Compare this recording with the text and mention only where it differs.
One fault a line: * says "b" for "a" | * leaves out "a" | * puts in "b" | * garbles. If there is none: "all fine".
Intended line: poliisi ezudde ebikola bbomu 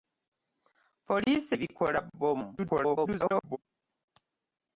* leaves out "ezudde"
* garbles